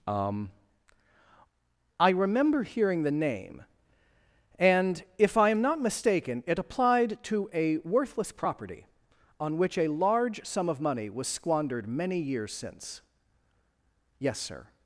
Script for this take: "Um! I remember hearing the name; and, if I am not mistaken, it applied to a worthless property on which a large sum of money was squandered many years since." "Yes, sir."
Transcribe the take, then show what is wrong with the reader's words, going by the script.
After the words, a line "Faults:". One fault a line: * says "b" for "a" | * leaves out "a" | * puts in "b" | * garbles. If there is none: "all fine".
"Um! I remember hearing the name; and, if I am not mistaken, it applied to a worthless property on which a large sum of money was squandered many years since." "Yes, sir."
Faults:
all fine